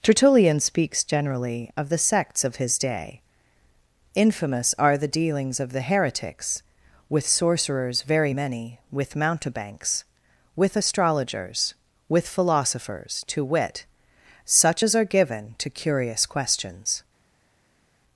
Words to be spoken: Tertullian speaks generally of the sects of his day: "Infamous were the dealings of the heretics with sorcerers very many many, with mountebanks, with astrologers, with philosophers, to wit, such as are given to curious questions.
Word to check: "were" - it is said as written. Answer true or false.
false